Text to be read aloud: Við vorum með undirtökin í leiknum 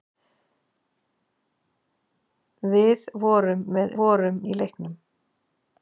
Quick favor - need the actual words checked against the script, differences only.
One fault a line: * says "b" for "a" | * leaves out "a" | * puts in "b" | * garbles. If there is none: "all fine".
* says "vorum" for "undirtökin"